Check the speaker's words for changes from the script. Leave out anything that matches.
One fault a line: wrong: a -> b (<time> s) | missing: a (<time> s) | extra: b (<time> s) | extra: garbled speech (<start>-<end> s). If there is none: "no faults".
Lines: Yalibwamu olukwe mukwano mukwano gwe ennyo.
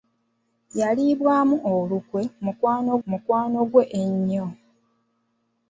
no faults